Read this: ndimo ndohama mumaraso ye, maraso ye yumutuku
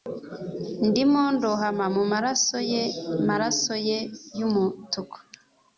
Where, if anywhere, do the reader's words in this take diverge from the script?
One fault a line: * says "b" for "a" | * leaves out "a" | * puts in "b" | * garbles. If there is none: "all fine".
all fine